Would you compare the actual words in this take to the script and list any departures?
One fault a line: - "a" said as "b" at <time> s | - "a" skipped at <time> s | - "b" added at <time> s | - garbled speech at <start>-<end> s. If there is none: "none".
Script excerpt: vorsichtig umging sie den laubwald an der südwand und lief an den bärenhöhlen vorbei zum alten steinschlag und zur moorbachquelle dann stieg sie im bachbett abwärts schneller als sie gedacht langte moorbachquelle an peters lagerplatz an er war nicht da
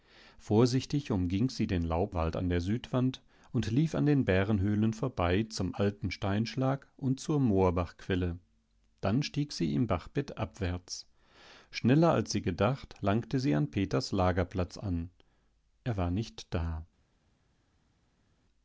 - "moorbachquelle" said as "sie" at 13.4 s